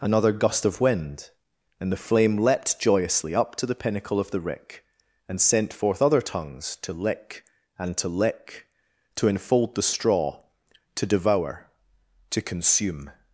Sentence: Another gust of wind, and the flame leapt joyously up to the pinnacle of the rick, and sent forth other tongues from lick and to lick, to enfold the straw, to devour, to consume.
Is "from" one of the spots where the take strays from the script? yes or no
yes